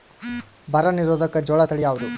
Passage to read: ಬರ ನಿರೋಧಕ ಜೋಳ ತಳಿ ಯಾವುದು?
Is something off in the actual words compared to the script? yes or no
no